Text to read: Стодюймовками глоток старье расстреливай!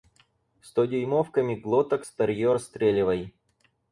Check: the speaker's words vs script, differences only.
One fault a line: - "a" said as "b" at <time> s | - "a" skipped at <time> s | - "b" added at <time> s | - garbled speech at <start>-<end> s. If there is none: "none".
none